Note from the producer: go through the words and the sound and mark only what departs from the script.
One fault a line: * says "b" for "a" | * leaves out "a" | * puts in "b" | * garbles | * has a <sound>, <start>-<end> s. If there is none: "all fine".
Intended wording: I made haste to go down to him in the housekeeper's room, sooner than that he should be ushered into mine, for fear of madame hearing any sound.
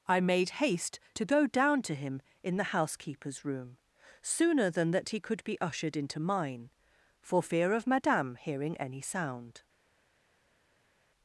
* says "could" for "should"